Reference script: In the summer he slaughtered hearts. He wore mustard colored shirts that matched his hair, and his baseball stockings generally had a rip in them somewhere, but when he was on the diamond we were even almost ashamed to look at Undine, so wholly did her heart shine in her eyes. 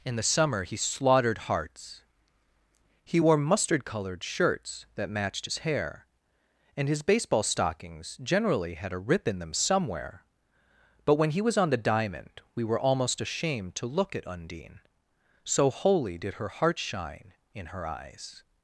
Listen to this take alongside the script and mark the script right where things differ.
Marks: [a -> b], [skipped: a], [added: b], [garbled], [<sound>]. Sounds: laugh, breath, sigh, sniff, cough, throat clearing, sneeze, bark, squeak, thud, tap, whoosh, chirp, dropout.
In the summer he slaughtered hearts. He wore mustard colored shirts that matched his hair, and his baseball stockings generally had a rip in them somewhere, but when he was on the diamond we were [skipped: even] almost ashamed to look at Undine, so wholly did her heart shine in her eyes.